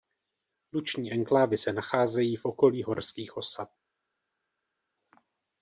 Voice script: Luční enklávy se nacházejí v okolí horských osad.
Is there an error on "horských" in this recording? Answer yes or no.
no